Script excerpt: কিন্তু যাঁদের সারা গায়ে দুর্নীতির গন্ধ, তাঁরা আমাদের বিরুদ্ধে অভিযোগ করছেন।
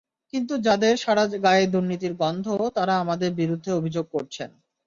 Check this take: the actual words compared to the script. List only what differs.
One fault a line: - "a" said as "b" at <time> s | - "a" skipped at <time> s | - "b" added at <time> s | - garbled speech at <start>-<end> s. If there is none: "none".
none